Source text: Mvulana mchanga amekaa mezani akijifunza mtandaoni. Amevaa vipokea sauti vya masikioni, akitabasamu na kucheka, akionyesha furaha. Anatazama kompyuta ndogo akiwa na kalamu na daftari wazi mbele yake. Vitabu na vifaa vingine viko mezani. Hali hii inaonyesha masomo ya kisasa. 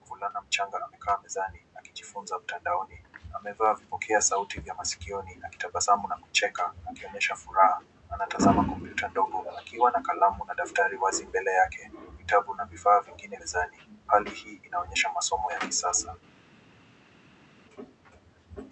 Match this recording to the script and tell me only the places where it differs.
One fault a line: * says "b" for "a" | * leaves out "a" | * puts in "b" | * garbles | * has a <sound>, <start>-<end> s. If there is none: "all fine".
* leaves out "viko"